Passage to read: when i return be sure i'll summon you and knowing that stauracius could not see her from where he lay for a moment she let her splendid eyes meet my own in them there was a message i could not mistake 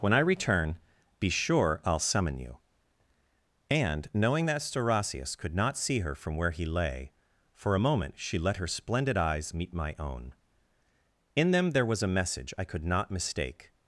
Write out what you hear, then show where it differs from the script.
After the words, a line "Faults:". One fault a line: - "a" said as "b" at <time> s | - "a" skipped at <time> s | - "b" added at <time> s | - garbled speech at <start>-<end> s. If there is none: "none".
when i return be sure i'll summon you and knowing that stauracius could not see her from where he lay for a moment she let her splendid eyes meet my own in them there was a message i could not mistake
Faults:
none